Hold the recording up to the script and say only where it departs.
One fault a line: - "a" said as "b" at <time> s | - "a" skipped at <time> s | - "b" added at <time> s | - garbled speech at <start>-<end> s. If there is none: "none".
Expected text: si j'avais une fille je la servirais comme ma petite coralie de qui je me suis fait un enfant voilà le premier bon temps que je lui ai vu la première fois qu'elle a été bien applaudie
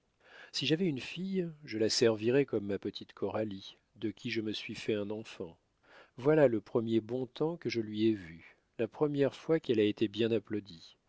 none